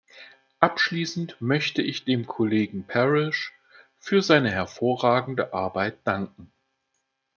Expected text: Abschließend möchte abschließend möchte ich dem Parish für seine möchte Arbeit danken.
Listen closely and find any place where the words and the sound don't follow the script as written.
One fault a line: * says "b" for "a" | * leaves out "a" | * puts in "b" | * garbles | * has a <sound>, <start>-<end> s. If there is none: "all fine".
* leaves out "abschließend möchte"
* puts in "Kollegen"
* says "hervorragende" for "möchte"